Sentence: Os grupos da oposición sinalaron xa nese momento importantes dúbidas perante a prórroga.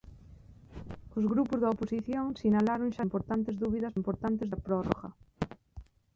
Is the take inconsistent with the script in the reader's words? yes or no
yes